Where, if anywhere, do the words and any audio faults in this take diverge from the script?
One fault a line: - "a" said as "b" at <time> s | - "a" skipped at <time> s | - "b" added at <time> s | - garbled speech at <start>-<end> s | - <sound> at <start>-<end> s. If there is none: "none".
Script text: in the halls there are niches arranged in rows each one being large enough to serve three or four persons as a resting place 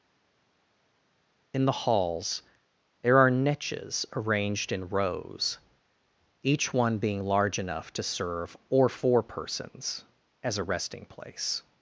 - "three" skipped at 8.5 s